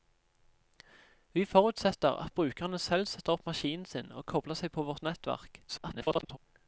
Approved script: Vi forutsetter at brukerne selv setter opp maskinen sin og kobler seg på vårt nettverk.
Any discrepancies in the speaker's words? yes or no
yes